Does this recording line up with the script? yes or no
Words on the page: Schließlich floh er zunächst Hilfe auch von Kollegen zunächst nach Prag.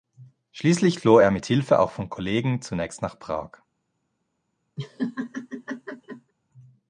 no